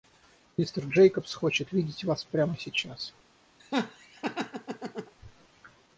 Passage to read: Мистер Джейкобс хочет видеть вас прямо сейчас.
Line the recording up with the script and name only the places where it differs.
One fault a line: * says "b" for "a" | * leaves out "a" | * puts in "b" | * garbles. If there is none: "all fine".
all fine